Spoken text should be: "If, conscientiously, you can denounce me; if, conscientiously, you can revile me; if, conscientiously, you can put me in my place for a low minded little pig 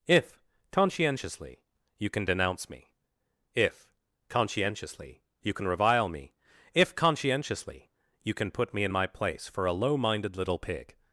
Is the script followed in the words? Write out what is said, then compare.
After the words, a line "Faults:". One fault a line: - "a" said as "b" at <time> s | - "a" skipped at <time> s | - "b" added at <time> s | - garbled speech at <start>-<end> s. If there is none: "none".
"If, conscientiously, you can denounce me; if, conscientiously, you can revile me; if, conscientiously, you can put me in my place for a low minded little pig
Faults:
none